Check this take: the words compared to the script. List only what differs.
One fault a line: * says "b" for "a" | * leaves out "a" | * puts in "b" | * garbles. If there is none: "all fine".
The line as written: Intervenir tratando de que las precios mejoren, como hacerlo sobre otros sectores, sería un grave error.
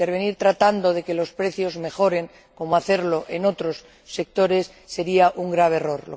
* says "los" for "las"
* says "en" for "sobre"